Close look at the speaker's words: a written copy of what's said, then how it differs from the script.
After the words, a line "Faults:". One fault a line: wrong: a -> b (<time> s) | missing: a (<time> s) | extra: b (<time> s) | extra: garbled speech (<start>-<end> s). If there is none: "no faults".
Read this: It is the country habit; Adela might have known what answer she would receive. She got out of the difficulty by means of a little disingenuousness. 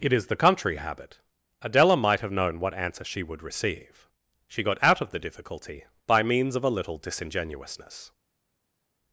It is the country habit; Adela might have known what answer she would receive. She got out of the difficulty by means of a little disingenuousness.
Faults:
no faults